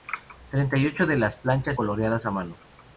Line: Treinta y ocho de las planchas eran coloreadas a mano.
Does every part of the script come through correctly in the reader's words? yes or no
no